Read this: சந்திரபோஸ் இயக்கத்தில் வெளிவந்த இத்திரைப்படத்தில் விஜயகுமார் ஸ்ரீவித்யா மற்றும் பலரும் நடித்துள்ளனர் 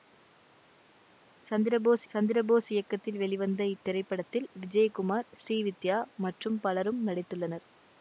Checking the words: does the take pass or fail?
fail